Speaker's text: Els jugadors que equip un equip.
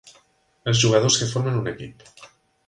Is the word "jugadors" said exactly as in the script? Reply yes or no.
yes